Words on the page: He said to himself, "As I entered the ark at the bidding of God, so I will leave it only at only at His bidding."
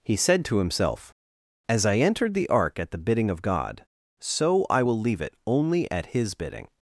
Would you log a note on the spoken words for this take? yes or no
yes